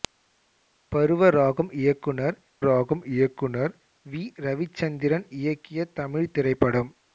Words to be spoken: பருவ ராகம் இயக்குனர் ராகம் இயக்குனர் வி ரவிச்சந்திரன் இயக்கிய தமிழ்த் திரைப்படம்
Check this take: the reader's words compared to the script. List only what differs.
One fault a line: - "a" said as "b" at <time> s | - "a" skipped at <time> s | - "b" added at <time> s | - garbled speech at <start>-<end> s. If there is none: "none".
none